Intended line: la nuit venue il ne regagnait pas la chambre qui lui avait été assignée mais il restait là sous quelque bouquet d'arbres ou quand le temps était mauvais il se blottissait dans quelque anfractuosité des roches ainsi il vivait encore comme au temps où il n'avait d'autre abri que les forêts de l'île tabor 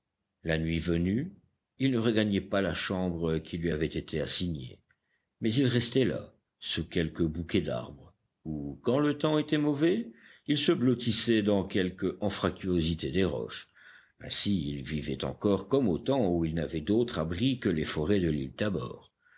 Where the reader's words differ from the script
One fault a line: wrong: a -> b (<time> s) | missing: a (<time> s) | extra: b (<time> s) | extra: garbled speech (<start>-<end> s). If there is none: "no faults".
no faults